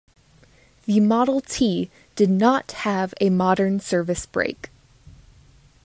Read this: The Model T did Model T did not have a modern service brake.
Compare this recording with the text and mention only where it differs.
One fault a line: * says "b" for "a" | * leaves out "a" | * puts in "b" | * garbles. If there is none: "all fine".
* leaves out "Model T did"